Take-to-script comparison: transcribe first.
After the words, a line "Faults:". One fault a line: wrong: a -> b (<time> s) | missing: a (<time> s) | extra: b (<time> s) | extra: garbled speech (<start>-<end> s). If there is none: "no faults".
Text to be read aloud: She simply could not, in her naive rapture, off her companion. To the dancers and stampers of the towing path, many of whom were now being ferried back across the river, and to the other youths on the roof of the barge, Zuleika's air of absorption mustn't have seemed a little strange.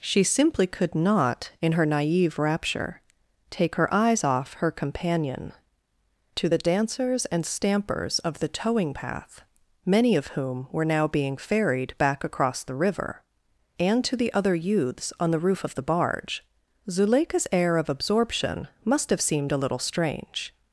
She simply could not, in her naive rapture, take her eyes off her companion. To the dancers and stampers of the towing path, many of whom were now being ferried back across the river, and to the other youths on the roof of the barge, Zuleika's air of absorption must have seemed a little strange.
Faults:
extra: take her eyes (3.5 s)
wrong: mustn't -> must (18.8 s)